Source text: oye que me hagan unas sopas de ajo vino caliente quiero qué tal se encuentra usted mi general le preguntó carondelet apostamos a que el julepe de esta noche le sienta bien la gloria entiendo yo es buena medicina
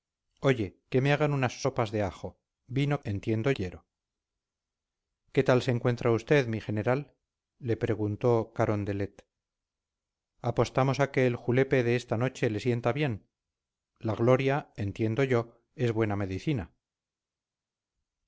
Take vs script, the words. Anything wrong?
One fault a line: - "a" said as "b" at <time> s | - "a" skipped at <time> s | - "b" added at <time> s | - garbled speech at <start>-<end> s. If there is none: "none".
- "caliente" said as "entiendo" at 3.0 s